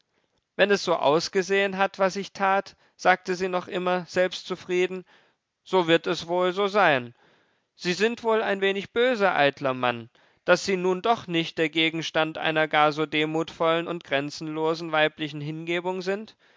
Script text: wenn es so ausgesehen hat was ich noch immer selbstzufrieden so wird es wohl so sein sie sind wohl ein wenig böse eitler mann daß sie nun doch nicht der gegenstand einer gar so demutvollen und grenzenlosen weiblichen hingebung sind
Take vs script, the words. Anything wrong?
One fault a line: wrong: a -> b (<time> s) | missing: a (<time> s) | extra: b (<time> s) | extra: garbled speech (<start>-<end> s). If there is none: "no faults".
extra: tat sagte sie (2.3 s)